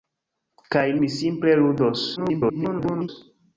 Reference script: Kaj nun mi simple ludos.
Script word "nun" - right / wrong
wrong